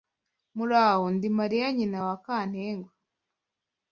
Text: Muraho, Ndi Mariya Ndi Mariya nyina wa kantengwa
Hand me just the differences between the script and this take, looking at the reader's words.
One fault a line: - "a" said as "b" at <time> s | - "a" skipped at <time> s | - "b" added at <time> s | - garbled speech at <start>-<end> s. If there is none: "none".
- "Ndi Mariya" skipped at 1.7 s